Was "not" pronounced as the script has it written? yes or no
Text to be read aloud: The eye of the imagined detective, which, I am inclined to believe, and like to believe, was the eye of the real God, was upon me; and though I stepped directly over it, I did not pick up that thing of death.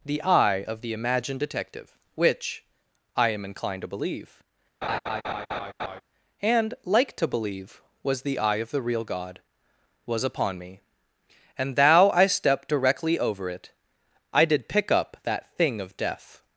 no